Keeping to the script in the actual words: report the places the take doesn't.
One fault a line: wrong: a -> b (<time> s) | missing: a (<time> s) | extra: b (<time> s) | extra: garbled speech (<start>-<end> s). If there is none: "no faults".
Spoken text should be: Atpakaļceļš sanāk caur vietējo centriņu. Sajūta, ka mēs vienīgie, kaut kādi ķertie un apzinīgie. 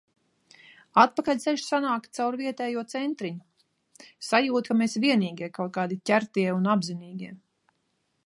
no faults